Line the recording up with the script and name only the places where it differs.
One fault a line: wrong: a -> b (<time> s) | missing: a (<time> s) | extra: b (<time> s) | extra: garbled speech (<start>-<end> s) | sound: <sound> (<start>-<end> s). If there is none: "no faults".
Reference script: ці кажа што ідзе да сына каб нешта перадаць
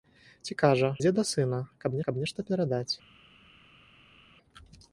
missing: што (0.9 s)
extra: каб (2.1 s)